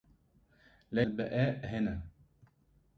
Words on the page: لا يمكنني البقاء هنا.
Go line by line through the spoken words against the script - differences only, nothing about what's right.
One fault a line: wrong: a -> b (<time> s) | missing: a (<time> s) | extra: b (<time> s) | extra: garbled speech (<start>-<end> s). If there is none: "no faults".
missing: يمكنني (1.0 s)